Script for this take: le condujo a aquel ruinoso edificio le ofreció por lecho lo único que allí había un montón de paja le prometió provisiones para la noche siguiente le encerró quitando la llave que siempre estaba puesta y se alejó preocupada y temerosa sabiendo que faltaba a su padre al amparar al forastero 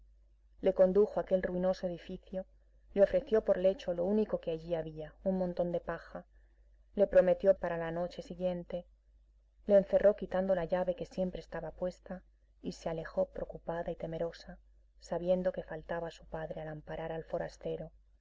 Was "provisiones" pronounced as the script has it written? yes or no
no